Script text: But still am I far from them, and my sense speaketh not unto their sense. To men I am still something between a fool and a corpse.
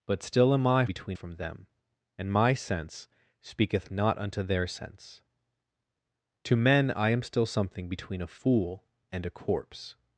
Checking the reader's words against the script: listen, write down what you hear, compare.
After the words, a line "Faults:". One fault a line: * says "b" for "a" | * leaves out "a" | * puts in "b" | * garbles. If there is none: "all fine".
But still am I between from them, and my sense speaketh not unto their sense. To men I am still something between a fool and a corpse.
Faults:
* says "between" for "far"